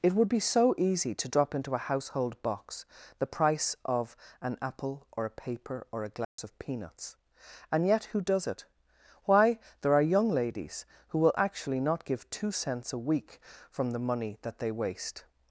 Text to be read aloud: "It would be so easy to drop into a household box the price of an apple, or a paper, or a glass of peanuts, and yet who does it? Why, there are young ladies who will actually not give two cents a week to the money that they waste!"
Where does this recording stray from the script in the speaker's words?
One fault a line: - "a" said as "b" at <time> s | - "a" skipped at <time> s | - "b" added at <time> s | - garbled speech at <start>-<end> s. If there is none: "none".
- "to" said as "from" at 13.7 s